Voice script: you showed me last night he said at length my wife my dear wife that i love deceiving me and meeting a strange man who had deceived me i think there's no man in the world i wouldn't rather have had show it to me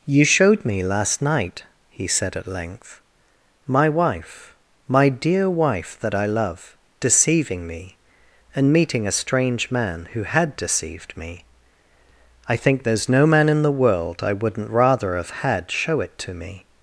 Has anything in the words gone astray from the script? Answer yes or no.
no